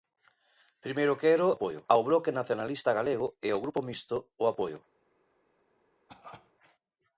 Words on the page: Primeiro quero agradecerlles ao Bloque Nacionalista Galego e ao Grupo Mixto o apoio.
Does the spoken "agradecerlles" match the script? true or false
false